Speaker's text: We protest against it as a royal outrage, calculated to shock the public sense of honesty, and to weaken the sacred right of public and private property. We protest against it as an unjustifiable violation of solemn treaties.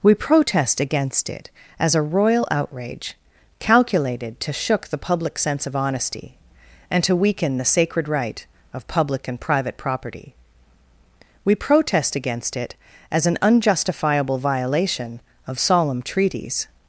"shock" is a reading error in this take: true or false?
true